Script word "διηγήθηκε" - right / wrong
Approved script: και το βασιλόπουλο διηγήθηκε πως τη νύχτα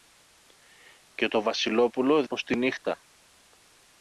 wrong